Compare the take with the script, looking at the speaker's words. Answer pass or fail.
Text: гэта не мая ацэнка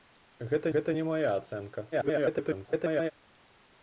fail